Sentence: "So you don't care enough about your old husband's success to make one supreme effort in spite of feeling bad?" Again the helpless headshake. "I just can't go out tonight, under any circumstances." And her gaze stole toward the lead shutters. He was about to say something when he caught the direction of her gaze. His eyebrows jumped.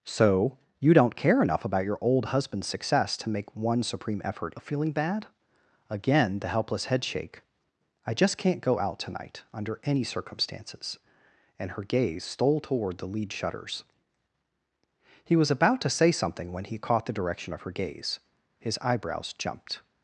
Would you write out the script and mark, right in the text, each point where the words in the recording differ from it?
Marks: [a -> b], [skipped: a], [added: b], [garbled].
"So you don't care enough about your old husband's success to make one supreme effort [skipped: in spite] of feeling bad?" Again the helpless headshake. "I just can't go out tonight, under any circumstances." And her gaze stole toward the lead shutters. He was about to say something when he caught the direction of her gaze. His eyebrows jumped.